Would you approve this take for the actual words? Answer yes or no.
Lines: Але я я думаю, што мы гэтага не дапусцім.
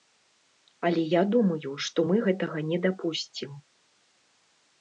no